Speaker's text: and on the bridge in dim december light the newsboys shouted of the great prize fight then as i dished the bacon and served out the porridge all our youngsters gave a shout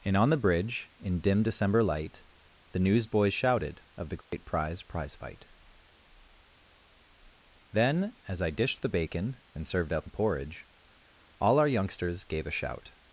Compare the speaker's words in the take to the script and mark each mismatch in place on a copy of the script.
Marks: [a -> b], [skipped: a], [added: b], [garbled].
and on the bridge in dim december light the newsboys shouted of the great prize [added: prize] fight then as i dished the bacon and served out the porridge all our youngsters gave a shout